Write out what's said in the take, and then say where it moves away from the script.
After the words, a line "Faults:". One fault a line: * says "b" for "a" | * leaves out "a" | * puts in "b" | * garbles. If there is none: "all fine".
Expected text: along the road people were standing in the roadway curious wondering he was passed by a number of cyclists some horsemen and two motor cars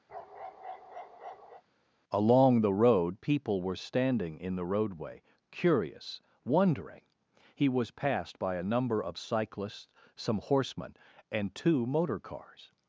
along the road people were standing in the roadway curious wondering he was passed by a number of cyclists some horsemen and two motor cars
Faults:
all fine